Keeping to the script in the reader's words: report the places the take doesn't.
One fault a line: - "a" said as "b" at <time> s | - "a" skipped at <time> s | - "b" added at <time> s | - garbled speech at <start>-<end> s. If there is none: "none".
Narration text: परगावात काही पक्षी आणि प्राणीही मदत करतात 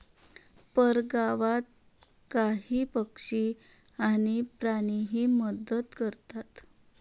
none